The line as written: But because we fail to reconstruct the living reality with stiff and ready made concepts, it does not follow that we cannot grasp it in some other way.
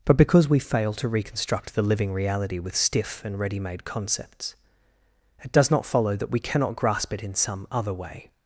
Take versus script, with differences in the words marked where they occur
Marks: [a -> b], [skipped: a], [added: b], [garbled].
But because we fail to reconstruct the living reality with stiff and ready made concepts, it does not follow that we cannot grasp it in some other way.